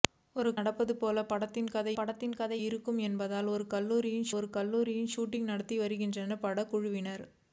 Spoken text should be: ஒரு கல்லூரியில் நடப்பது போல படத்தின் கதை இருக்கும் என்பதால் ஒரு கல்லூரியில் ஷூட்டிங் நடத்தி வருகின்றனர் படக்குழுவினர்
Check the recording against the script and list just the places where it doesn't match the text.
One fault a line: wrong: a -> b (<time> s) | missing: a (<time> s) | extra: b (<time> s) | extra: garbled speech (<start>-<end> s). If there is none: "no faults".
missing: கல்லூரியில் (0.5 s)
extra: படத்தின் கதை (1.9 s)
extra: ஒரு கல்லூரியில் (4.4 s)